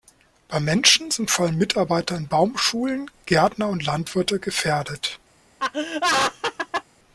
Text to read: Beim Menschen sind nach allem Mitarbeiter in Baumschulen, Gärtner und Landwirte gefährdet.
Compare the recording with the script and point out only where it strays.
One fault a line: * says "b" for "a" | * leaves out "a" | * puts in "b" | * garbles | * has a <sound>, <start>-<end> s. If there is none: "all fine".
* says "vor" for "nach"
* has a laugh, 5.6-6.8 s